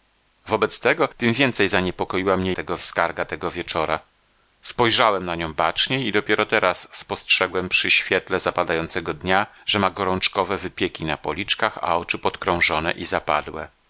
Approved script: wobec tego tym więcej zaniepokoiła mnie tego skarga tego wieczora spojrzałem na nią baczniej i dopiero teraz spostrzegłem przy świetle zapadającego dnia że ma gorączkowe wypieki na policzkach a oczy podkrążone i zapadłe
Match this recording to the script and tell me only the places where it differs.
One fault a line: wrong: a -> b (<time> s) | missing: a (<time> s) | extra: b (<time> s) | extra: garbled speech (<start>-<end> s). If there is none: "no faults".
no faults